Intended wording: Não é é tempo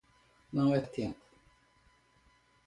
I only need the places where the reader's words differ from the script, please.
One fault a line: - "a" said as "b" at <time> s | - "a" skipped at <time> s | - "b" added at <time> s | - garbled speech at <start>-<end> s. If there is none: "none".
none